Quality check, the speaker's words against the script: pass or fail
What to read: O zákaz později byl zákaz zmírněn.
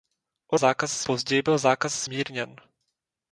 pass